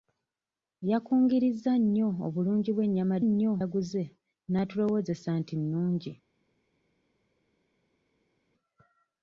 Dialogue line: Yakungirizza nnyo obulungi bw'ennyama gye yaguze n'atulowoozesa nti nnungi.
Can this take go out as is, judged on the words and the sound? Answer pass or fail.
fail